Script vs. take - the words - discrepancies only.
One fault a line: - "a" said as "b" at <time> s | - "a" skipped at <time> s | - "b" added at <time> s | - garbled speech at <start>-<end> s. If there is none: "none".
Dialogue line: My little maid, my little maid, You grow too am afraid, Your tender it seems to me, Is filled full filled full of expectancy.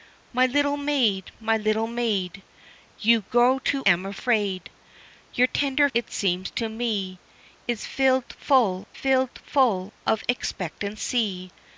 none